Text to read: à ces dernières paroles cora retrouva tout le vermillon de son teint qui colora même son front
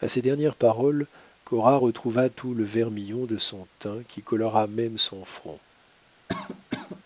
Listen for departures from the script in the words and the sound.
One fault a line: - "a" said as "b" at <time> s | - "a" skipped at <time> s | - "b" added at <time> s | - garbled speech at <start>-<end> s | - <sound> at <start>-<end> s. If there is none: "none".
- cough at 6.3-7.0 s